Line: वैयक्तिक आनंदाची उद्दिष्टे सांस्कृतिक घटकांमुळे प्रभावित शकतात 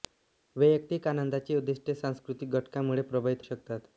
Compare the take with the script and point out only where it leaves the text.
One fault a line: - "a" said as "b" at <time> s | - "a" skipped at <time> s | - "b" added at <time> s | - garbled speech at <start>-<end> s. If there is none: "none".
none